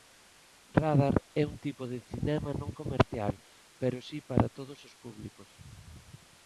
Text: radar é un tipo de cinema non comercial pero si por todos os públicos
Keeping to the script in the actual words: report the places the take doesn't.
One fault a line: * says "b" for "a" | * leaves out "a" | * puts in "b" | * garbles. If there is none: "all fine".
* says "para" for "por"